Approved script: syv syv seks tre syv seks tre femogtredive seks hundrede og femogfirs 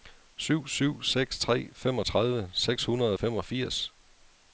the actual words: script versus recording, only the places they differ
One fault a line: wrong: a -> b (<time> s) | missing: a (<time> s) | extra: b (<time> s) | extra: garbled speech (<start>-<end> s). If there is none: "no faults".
missing: syv seks tre (1.7 s)